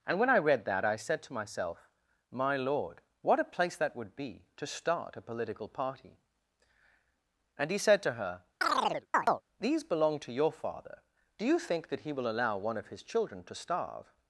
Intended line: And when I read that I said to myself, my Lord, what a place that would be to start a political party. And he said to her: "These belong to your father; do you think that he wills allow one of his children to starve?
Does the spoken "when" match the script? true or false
true